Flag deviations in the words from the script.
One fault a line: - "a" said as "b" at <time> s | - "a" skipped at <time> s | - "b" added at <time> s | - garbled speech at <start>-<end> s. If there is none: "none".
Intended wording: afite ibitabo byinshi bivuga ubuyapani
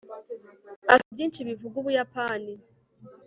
- "ibitabo" skipped at 1.1 s